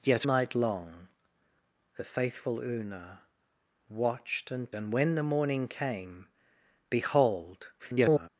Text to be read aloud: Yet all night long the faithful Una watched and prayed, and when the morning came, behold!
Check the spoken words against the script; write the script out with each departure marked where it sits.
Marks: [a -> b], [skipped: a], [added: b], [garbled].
Yet [skipped: all] night long the faithful Una watched and [skipped: prayed,] and when the morning came, behold! [garbled]